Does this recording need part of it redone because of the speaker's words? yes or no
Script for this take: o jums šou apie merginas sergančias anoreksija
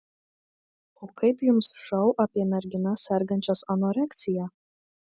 yes